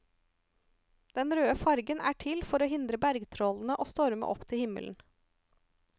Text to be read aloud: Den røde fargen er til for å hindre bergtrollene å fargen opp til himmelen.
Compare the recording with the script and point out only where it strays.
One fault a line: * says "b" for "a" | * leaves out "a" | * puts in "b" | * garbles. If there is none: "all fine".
* says "storme" for "fargen"